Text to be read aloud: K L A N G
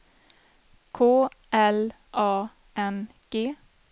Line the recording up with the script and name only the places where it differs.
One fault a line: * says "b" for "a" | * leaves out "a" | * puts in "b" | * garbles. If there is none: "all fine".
all fine